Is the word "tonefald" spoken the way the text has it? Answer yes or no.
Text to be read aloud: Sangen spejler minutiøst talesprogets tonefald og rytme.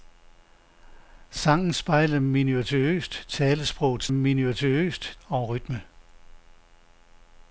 no